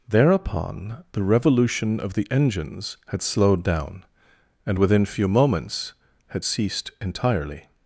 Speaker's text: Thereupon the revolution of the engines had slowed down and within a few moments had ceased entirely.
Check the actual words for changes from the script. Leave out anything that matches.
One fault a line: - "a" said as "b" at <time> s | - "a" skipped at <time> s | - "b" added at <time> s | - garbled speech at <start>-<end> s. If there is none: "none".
- "a" skipped at 5.1 s